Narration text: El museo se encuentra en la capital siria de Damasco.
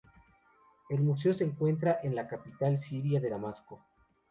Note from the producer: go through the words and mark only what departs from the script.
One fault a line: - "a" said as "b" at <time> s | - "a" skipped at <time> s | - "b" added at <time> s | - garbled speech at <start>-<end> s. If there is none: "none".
none